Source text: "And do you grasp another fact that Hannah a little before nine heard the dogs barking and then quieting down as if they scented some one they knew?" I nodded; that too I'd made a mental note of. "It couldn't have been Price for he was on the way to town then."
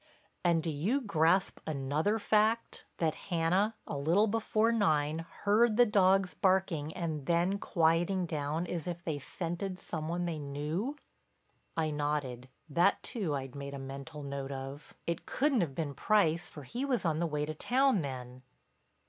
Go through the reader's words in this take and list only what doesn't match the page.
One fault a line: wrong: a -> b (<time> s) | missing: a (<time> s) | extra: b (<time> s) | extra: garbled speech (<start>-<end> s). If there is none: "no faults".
no faults